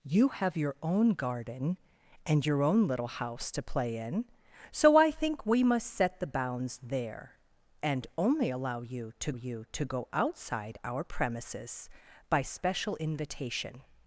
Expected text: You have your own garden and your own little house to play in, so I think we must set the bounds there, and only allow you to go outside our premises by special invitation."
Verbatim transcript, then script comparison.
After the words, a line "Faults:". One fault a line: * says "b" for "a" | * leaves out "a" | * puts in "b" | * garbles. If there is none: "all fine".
You have your own garden and your own little house to play in, so I think we must set the bounds there, and only allow you to you to go outside our premises by special invitation."
Faults:
* puts in "you to"